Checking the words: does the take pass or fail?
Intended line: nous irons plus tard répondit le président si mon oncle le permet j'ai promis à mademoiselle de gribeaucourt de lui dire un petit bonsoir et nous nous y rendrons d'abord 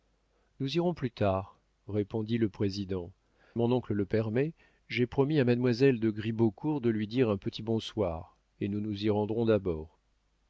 fail